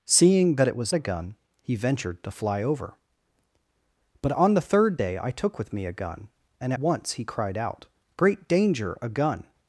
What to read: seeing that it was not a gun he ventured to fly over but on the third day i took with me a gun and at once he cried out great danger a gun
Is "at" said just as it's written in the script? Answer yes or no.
no